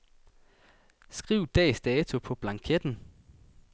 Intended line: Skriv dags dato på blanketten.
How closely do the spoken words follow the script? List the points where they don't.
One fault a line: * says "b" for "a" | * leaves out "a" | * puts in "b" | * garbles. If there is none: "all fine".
all fine